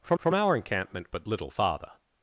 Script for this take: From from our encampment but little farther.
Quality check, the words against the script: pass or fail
pass